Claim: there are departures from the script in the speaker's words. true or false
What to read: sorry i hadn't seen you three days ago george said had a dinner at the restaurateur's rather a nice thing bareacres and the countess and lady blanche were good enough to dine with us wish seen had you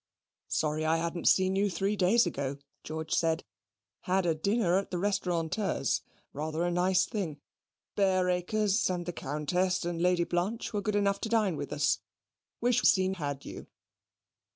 false